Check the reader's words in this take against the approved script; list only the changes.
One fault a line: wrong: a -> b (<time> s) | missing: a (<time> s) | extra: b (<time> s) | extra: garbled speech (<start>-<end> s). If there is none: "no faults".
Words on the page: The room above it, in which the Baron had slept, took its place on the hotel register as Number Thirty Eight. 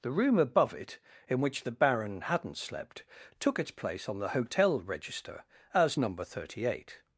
wrong: had -> hadn't (2.2 s)